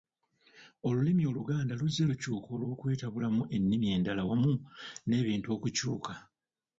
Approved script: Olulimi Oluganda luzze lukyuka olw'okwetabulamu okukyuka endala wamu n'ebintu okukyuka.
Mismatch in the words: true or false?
true